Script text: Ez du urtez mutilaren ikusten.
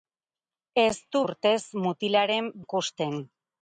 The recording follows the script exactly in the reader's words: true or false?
true